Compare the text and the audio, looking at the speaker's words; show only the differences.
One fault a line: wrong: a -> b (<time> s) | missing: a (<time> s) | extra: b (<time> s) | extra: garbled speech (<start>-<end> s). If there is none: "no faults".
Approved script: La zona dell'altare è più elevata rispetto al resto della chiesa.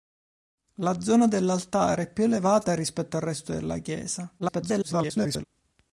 extra: garbled speech (4.4-5.4 s)